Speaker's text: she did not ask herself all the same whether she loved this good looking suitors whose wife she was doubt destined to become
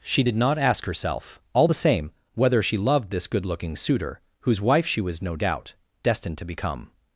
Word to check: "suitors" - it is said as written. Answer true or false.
false